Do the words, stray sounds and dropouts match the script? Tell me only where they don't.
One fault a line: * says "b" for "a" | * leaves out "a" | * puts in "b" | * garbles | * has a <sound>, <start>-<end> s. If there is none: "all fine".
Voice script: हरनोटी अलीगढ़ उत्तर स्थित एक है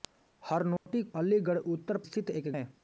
* has a dropout, 0.8-0.9 s